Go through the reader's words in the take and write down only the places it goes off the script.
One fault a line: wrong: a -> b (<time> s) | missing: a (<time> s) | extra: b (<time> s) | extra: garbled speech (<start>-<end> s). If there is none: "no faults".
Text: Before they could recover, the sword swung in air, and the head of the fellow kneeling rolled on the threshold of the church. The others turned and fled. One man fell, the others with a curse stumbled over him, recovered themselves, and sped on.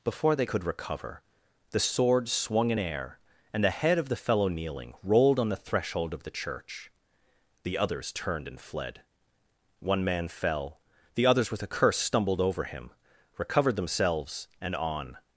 missing: sped (14.8 s)